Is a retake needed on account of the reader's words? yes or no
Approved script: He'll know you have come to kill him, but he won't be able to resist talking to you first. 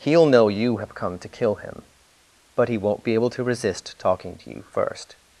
no